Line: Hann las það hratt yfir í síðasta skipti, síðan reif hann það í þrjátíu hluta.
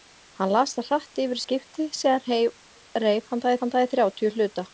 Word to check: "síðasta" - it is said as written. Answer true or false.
false